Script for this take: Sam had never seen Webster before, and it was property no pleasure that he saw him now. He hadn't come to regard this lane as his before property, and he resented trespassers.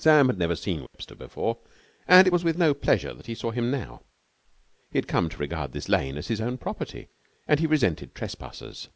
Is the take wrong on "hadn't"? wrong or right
wrong